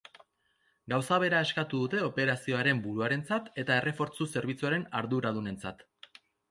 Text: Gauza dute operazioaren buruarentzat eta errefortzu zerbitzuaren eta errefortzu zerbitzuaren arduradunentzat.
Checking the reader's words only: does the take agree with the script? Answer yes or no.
no